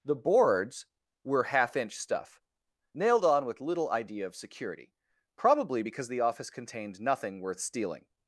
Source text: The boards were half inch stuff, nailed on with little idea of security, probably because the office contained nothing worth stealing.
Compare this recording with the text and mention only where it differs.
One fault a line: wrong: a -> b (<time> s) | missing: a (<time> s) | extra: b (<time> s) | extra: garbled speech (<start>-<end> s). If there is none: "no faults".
no faults